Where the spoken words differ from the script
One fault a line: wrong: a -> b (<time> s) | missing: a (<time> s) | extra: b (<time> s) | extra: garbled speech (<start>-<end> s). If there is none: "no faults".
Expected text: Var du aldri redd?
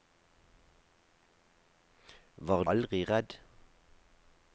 missing: du (2.6 s)